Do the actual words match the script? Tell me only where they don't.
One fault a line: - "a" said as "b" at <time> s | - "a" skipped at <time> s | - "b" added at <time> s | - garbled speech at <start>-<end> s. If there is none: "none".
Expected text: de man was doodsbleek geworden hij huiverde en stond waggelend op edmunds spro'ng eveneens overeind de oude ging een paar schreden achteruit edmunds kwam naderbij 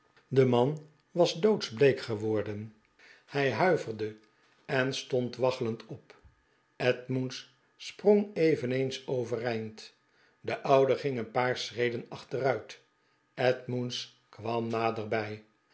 none